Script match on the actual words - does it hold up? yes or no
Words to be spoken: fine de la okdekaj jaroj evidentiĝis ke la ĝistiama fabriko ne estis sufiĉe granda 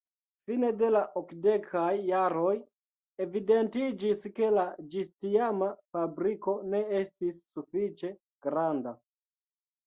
yes